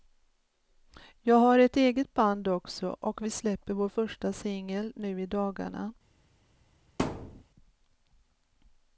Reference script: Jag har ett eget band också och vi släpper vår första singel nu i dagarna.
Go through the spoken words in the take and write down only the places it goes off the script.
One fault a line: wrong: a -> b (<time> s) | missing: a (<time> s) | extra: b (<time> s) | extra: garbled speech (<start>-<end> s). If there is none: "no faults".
no faults